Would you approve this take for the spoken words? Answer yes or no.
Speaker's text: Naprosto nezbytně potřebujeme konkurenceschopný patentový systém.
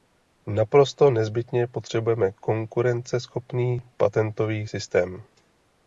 yes